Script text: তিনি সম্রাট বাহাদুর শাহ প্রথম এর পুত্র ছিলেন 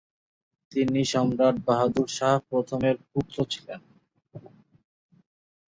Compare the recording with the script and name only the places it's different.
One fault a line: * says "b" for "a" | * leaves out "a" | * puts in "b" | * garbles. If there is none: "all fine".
all fine